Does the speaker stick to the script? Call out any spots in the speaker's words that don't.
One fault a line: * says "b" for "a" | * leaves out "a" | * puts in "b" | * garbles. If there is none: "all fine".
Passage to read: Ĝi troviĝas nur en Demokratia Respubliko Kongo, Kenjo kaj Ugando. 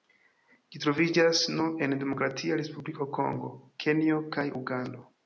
all fine